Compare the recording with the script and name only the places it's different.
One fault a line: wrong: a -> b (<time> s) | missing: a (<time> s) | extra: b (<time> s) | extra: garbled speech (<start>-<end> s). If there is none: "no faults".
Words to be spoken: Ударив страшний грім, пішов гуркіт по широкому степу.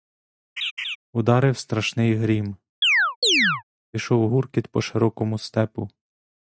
no faults